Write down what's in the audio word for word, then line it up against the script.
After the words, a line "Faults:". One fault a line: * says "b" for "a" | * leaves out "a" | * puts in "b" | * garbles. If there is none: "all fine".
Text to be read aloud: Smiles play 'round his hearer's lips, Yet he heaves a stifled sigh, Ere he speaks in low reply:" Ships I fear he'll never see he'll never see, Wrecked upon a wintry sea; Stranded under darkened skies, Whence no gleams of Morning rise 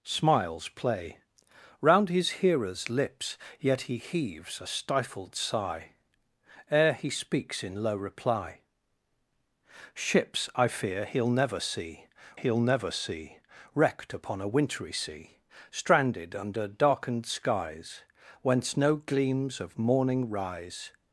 Smiles play 'round his hearer's lips, Yet he heaves a stifled sigh, Ere he speaks in low reply:" Ships I fear he'll never see he'll never see, Wrecked upon a wintry sea; Stranded under darkened skies, Whence no gleams of Morning rise
Faults:
all fine